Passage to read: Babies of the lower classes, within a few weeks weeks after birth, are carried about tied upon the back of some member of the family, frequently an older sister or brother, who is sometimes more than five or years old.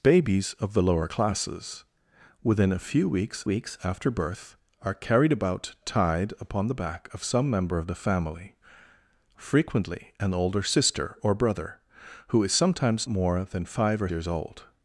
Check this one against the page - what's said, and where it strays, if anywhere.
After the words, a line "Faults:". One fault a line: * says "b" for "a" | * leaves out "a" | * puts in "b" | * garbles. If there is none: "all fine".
Babies of the lower classes, within a few weeks weeks after birth, are carried about tied upon the back of some member of the family, frequently an older sister or brother, who is sometimes more than five or years old.
Faults:
all fine